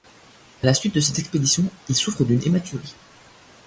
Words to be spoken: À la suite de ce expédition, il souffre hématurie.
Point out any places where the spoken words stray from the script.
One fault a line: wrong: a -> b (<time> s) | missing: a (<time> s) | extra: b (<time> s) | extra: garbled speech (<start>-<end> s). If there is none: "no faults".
wrong: ce -> cette (1.0 s)
extra: d'une (2.2 s)